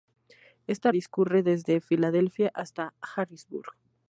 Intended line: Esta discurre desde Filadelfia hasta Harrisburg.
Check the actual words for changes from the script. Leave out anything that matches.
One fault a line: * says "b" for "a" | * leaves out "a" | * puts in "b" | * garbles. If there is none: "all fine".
all fine